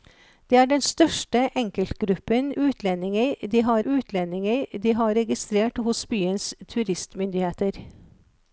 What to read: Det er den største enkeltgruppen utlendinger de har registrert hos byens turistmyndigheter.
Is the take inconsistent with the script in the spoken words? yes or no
yes